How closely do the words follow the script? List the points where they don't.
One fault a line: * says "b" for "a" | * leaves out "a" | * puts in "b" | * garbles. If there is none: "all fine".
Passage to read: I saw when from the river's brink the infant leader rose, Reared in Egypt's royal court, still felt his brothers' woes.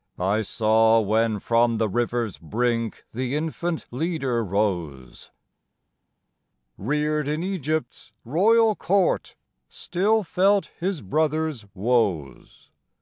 all fine